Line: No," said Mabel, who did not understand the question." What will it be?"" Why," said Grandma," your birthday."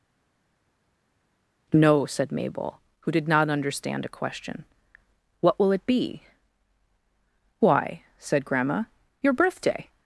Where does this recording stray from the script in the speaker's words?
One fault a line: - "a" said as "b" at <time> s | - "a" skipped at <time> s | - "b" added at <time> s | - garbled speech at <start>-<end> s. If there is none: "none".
- "the" said as "a" at 4.0 s